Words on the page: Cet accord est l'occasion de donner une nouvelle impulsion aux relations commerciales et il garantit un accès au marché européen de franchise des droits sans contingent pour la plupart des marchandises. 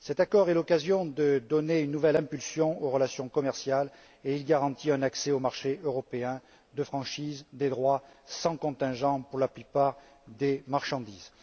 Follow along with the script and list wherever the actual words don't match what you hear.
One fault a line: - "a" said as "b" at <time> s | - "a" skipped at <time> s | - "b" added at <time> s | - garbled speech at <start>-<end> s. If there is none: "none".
none